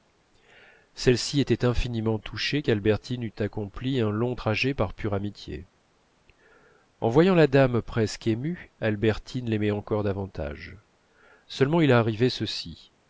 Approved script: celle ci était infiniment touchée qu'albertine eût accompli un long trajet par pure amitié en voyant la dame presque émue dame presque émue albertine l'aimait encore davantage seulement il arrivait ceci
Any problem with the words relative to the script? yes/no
yes